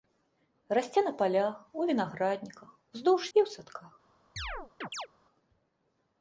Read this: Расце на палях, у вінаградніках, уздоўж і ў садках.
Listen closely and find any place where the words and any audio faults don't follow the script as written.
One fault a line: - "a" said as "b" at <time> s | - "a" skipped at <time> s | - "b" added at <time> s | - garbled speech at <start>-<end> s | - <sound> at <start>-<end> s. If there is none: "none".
- chirp at 4.4-5.1 s